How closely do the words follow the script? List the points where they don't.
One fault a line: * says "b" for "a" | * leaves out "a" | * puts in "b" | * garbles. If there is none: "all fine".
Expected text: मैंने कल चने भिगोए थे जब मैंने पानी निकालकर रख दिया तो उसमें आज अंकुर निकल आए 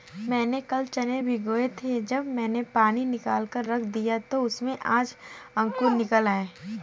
all fine